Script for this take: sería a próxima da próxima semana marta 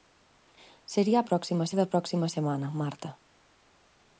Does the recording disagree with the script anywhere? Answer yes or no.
no